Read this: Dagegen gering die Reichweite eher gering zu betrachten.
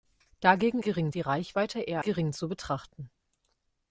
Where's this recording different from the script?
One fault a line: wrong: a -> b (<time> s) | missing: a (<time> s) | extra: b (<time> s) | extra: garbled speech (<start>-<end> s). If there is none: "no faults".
no faults